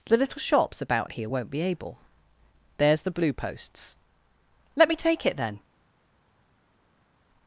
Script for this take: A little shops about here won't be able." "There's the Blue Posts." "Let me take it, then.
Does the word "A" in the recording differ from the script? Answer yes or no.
yes